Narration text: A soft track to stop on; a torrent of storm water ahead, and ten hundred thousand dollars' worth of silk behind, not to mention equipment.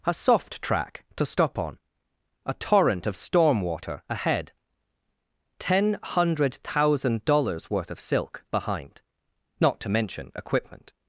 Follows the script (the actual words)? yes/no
no